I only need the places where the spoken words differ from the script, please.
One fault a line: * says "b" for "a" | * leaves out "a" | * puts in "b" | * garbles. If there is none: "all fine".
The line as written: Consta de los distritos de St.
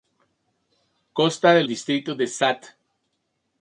* leaves out "los"